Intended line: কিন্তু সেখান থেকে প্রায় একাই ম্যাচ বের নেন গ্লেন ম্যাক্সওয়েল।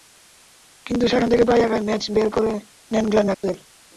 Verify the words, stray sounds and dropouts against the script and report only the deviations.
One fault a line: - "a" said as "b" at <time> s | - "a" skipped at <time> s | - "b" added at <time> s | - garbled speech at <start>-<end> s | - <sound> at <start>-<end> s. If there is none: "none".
- "করে" added at 2.4 s
- dropout at 3.3-3.4 s